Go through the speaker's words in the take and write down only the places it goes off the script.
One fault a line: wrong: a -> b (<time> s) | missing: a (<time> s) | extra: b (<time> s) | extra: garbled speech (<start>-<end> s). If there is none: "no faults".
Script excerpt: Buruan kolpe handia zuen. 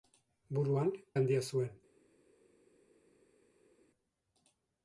missing: kolpe (0.9 s)